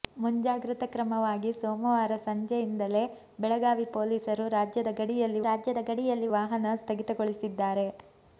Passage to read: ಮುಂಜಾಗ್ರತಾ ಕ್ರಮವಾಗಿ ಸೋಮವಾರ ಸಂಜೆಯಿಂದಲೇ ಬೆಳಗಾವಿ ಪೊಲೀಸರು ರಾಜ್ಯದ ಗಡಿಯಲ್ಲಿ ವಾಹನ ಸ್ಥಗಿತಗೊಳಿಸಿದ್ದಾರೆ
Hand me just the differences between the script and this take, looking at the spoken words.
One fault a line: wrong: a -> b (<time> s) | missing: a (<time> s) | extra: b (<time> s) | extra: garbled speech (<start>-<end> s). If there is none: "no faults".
extra: ರಾಜ್ಯದ ಗಡಿಯಲ್ಲಿ (5.5 s)